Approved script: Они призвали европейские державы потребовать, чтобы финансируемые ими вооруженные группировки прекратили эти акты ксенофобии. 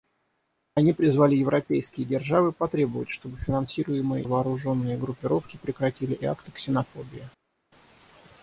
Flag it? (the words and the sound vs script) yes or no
yes